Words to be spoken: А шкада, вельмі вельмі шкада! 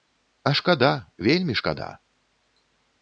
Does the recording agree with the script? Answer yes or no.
no